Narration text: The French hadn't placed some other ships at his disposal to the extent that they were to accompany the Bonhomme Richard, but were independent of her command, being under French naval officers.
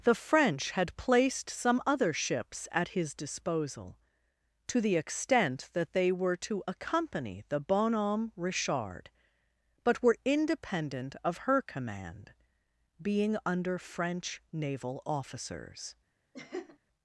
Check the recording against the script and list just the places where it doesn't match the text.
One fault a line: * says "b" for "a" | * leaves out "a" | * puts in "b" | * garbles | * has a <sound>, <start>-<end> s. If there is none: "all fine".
* says "had" for "hadn't"
* has a laugh, 16.3-16.8 s